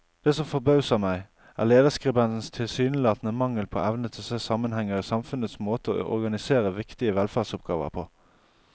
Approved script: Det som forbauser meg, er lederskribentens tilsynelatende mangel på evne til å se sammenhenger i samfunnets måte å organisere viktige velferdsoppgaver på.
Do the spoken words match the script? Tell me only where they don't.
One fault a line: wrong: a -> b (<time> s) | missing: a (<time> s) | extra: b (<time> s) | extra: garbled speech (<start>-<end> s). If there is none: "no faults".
no faults